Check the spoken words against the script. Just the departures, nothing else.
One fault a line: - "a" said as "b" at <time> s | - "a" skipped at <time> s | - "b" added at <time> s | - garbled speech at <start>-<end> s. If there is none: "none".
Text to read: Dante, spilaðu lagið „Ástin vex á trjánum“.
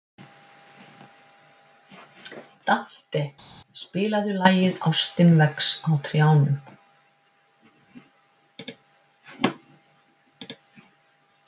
none